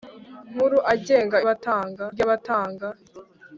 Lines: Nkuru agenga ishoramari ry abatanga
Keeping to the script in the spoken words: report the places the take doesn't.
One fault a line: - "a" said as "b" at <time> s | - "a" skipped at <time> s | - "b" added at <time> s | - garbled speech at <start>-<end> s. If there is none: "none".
- "ishoramari" said as "abatanga" at 1.4 s